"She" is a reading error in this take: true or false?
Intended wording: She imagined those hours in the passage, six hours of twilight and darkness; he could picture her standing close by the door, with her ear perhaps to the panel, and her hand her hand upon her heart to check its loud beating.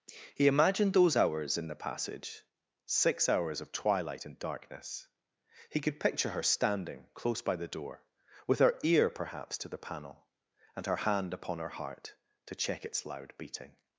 true